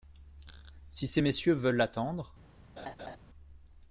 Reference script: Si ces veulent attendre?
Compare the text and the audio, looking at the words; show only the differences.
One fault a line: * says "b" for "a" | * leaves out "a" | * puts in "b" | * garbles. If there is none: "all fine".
* puts in "messieurs"